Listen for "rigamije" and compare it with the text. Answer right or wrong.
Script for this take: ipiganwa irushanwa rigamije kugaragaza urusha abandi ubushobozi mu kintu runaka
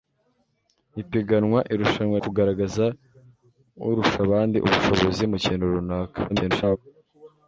wrong